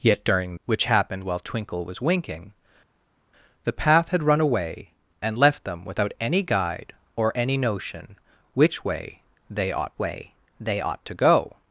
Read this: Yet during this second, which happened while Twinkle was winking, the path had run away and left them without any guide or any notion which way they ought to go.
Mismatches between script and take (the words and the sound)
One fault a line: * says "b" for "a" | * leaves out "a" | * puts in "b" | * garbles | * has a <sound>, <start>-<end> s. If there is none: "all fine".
* leaves out "this second"
* puts in "way they ought"